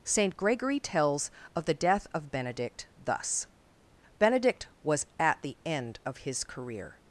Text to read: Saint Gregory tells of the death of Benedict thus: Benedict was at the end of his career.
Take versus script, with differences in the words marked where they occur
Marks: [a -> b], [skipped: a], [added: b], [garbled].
Saint Gregory tells of the death of Benedict thus: Benedict was at the end of his career.